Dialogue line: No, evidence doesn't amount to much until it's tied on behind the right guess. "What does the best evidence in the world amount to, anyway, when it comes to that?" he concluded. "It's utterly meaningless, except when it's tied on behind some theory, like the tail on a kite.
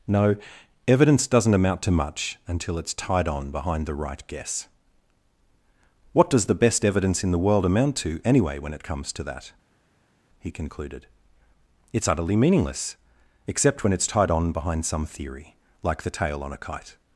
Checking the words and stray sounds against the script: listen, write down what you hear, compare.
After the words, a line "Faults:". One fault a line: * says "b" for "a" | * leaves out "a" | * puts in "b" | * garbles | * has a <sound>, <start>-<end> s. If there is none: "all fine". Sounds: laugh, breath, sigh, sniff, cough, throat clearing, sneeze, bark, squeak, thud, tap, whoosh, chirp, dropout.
No, evidence doesn't amount to much until it's tied on behind the right guess. "What does the best evidence in the world amount to, anyway, when it comes to that?" he concluded. "It's utterly meaningless, except when it's tied on behind some theory, like the tail on a kite.
Faults:
all fine